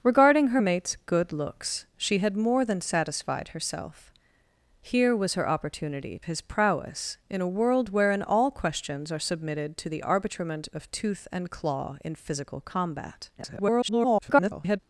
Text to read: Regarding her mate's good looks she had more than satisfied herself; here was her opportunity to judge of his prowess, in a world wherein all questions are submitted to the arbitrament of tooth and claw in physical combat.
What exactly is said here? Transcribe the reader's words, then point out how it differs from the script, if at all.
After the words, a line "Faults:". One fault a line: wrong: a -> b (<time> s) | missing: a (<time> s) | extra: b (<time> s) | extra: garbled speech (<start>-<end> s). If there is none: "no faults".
Regarding her mate's good looks she had more than satisfied herself; here was her opportunity his prowess, in a world wherein all questions are submitted to the arbitrament of tooth and claw in physical combat. [garbled]
Faults:
missing: to judge of (6.2 s)
extra: garbled speech (13.4-14.8 s)